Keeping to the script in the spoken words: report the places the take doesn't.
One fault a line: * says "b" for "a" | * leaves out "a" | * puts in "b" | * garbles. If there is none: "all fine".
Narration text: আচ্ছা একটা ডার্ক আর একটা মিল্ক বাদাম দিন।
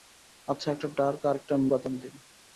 * leaves out "মিল্ক"